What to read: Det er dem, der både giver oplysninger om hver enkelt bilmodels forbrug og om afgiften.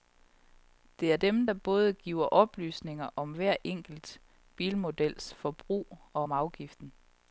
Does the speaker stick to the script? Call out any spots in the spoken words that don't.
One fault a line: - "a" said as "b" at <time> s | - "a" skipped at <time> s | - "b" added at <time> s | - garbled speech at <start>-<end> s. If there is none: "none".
none